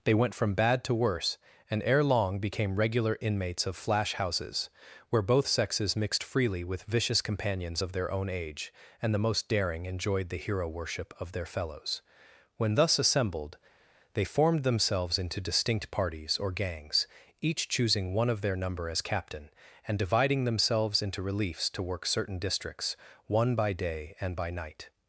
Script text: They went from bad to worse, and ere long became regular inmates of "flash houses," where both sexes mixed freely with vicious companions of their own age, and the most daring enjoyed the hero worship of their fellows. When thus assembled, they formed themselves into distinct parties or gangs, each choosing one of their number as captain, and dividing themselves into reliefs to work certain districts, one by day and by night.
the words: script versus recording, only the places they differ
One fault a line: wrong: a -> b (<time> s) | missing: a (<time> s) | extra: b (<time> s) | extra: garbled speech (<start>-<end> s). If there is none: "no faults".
no faults